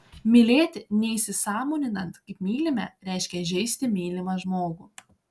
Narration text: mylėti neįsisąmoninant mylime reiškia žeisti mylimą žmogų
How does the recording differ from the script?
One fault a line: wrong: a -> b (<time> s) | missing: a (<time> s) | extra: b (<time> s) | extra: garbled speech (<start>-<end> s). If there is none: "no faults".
extra: kaip (2.3 s)